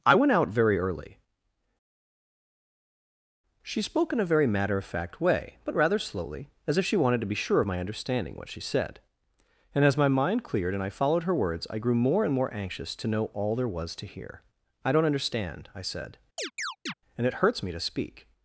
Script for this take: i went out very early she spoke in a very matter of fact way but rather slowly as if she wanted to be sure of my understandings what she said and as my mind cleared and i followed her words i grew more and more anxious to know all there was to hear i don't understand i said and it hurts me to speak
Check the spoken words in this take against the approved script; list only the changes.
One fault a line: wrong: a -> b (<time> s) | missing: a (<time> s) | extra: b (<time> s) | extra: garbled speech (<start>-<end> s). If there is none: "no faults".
wrong: understandings -> understanding (7.8 s)